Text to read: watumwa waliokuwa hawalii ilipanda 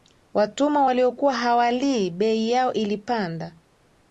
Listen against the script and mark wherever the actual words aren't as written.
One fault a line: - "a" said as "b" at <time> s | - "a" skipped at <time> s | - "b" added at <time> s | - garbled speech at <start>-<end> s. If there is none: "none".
- "bei yao" added at 2.1 s